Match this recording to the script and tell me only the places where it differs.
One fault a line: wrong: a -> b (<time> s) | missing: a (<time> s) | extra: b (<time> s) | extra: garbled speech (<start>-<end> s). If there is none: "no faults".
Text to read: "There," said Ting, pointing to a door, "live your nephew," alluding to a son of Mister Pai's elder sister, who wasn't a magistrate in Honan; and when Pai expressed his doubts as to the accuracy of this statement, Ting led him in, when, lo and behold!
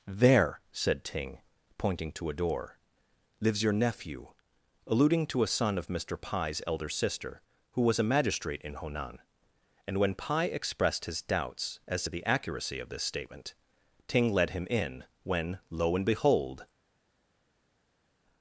wrong: live -> lives (3.4 s)
wrong: wasn't -> was (7.8 s)